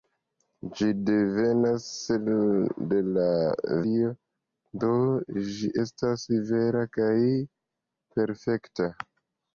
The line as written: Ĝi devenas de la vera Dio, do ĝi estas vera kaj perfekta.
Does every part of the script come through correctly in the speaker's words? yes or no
no